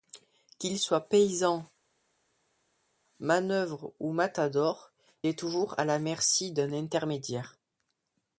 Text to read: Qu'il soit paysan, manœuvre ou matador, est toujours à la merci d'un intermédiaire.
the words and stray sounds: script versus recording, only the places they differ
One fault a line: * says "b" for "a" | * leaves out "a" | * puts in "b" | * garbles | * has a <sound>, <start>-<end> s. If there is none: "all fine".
all fine